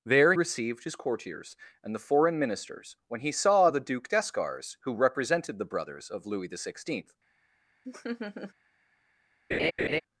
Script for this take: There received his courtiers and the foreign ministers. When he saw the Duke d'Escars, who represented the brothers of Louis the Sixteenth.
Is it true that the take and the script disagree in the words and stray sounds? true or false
true